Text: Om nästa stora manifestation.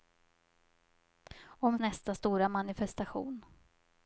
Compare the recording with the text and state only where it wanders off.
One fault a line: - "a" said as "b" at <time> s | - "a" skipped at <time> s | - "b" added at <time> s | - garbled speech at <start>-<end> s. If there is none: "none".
none